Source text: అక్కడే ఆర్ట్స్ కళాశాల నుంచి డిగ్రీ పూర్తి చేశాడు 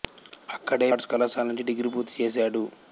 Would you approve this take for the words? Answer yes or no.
yes